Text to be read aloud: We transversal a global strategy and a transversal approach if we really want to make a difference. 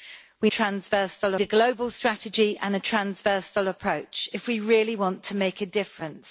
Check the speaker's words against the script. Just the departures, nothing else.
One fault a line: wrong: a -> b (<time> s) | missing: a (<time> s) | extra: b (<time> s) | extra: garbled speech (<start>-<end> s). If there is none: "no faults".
no faults